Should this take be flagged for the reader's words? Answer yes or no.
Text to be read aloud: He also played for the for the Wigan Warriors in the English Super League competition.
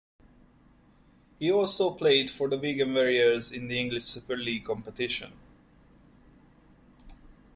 yes